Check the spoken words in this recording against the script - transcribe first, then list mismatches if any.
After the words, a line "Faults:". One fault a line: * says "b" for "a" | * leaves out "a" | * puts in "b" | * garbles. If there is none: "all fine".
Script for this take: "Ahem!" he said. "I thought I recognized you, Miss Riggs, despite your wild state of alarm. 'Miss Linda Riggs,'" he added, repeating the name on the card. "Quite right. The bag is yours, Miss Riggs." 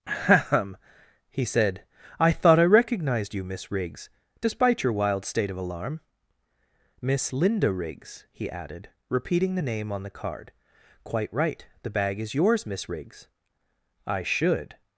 "Ahem!" he said. "I thought I recognized you, Miss Riggs, despite your wild state of alarm. 'Miss Linda Riggs,'" he added, repeating the name on the card. "Quite right. The bag is yours, Miss Riggs." "I should
Faults:
* puts in "I should"